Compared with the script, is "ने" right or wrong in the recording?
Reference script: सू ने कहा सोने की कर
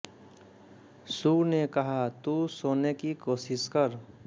right